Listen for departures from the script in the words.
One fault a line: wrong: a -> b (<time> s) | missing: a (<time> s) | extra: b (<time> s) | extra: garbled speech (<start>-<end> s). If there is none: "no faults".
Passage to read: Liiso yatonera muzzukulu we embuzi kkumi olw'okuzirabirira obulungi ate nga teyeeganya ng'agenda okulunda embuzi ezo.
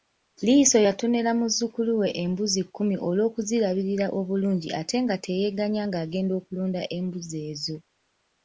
no faults